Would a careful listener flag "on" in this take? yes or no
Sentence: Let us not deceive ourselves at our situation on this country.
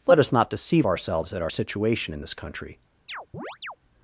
yes